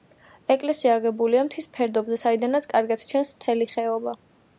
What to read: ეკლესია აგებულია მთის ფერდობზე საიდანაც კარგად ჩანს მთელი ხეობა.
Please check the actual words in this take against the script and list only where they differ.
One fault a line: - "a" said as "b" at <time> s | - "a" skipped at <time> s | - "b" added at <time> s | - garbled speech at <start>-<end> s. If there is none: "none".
none